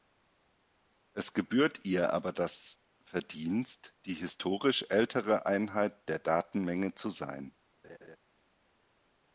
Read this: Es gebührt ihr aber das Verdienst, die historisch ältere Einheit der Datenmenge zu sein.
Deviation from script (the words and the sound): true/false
true